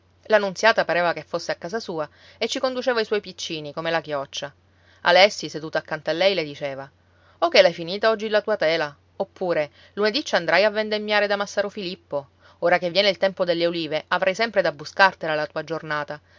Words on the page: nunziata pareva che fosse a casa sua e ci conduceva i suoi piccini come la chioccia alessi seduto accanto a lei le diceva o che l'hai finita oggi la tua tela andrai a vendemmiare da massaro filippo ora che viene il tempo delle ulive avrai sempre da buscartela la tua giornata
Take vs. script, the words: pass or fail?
fail